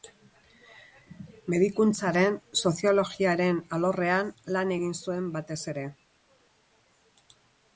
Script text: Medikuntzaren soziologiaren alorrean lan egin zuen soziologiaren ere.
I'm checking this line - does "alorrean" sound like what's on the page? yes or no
yes